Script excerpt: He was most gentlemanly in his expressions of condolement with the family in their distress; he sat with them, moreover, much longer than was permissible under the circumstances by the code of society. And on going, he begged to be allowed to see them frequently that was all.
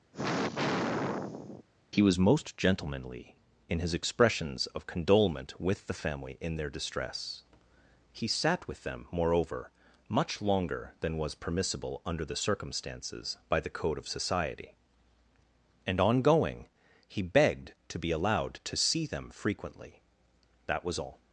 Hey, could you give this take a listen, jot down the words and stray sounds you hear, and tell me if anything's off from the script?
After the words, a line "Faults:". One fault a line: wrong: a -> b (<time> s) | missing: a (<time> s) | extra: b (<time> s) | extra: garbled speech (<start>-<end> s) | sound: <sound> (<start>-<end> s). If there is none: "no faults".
He was most gentlemanly in his expressions of condolement with the family in their distress; he sat with them, moreover, much longer than was permissible under the circumstances by the code of society. And on going, he begged to be allowed to see them frequently that was all.
Faults:
sound: sigh (0.1-1.6 s)